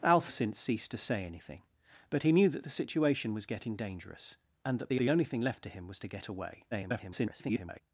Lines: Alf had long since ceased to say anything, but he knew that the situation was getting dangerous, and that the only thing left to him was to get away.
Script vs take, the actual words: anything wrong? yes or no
yes